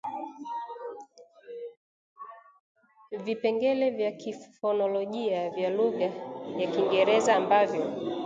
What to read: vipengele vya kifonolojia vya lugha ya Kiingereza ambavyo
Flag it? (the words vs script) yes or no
no